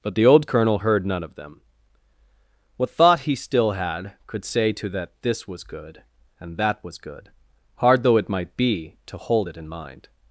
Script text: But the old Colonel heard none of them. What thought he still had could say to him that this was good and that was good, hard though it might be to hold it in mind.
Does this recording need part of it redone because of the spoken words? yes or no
yes